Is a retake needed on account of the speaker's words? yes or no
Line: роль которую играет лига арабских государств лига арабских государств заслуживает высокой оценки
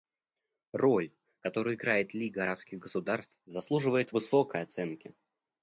yes